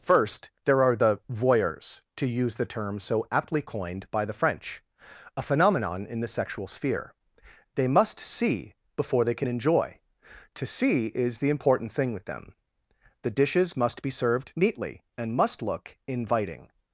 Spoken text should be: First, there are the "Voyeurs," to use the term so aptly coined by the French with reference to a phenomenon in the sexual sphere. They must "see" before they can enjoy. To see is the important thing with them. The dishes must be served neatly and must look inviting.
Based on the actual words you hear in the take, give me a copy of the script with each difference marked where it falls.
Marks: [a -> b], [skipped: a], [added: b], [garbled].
First, there are the "Voyeurs," to use the term so aptly coined by the French [skipped: with reference to] a phenomenon in the sexual sphere. They must "see" before they can enjoy. To see is the important thing with them. The dishes must be served neatly and must look inviting.